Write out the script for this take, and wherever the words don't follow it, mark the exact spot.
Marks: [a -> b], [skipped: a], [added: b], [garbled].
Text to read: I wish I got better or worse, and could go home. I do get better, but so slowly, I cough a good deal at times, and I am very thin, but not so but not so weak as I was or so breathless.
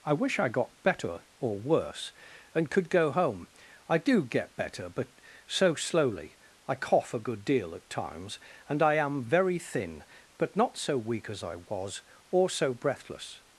I wish I got better or worse, and could go home. I do get better, but so slowly, I cough a good deal at times, and I am very thin, but not so [skipped: but not so] weak as I was or so breathless.